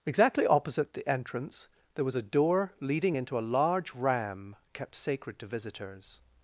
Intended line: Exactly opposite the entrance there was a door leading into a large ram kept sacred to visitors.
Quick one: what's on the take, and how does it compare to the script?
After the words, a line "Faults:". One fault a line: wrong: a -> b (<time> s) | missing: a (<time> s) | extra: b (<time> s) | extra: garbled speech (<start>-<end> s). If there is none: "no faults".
Exactly opposite the entrance there was a door leading into a large ram kept sacred to visitors.
Faults:
no faults